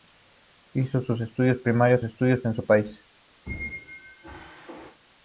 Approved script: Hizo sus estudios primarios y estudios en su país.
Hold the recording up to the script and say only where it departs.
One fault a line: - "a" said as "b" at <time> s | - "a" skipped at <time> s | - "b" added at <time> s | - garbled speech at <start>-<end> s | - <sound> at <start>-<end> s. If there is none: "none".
- squeak at 3.5-5.0 s